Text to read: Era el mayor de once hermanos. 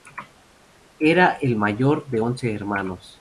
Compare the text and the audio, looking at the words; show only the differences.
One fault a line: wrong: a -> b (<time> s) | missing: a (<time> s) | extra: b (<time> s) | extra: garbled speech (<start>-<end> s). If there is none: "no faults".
no faults